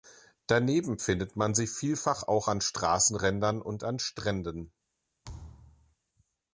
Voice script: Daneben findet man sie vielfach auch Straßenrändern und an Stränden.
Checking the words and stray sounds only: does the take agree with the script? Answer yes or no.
no